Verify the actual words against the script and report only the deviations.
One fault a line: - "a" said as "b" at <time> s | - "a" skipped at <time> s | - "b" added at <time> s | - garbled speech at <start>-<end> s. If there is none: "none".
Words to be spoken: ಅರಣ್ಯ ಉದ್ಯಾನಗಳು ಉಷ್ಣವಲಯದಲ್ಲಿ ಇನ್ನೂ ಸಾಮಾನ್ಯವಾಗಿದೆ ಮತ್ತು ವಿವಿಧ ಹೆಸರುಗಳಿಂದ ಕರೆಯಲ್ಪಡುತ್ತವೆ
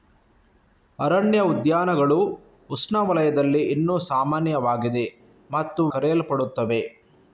- "ವಿವಿಧ ಹೆಸರುಗಳಿಂದ" skipped at 5.8 s